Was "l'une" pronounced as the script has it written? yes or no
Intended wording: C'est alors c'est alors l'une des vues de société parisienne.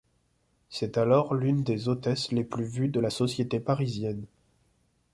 no